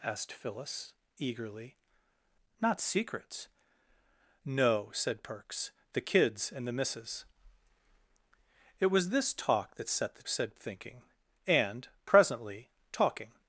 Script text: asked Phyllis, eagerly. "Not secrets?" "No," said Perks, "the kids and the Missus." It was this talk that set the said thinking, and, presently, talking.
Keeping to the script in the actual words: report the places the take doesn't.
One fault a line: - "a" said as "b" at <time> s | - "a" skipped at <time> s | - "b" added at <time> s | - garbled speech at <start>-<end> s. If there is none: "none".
none